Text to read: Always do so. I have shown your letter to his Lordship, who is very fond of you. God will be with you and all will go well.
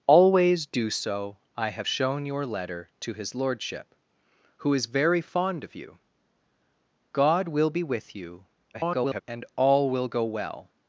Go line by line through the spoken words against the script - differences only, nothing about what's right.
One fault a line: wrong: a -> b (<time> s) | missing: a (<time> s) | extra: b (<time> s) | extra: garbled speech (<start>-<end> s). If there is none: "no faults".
extra: garbled speech (8.7-9.2 s)